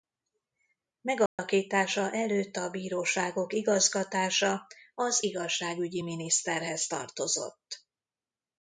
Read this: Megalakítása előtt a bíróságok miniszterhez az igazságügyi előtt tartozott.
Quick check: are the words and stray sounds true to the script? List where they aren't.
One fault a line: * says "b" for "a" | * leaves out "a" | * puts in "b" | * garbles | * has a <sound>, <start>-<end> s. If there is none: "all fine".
* has a dropout, 1.3-1.4 s
* says "igazgatása" for "miniszterhez"
* says "miniszterhez" for "előtt"